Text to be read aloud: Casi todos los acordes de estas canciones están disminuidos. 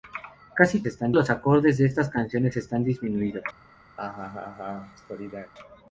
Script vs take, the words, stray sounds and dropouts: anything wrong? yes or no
yes